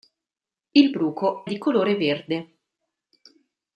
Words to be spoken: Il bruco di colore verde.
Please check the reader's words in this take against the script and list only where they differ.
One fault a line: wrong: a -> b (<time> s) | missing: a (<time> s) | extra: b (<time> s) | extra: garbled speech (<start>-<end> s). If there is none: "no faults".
no faults